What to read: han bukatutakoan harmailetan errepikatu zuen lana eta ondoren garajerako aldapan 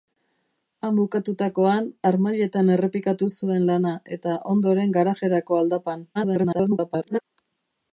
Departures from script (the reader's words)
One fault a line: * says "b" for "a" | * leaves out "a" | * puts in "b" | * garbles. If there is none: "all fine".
* garbles